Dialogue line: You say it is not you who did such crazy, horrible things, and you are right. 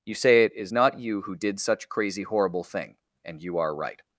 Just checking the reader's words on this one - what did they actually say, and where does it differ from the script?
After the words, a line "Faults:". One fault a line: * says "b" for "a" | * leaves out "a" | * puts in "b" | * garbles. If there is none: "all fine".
You say it is not you who did such crazy, horrible thing, and you are right.
Faults:
* says "thing" for "things"